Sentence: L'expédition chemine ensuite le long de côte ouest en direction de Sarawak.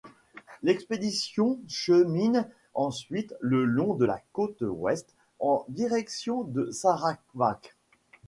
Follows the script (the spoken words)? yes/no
no